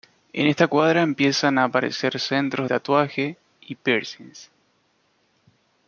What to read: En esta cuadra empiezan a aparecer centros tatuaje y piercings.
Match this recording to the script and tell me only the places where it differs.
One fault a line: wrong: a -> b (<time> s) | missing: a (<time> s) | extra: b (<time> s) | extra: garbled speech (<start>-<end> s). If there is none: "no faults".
no faults